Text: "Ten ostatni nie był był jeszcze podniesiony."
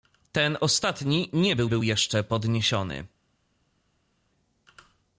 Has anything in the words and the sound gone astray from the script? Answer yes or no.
no